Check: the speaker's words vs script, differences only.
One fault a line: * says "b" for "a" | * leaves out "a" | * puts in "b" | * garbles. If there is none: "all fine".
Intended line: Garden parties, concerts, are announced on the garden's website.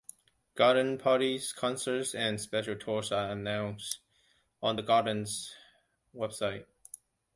* puts in "and special tours"